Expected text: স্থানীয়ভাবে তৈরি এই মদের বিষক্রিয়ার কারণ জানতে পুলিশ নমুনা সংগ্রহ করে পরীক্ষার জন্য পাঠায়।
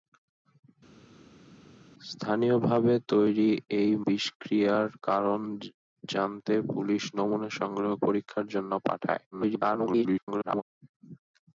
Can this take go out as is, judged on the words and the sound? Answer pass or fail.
fail